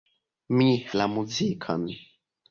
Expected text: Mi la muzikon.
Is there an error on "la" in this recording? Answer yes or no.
no